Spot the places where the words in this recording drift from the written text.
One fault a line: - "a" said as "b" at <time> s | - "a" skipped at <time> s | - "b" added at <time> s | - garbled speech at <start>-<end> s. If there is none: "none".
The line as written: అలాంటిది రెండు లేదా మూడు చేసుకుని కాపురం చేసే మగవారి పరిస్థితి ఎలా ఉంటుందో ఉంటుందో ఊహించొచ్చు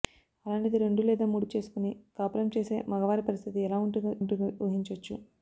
none